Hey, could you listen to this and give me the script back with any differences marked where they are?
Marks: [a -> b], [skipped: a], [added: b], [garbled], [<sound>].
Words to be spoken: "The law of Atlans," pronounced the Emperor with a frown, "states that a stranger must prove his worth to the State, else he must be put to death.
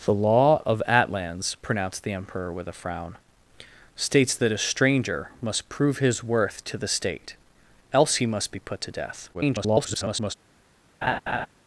"The law of Atlans," pronounced the Emperor with a frown, "states that a stranger must prove his worth to the State, else he must be put to death. [garbled] [laugh]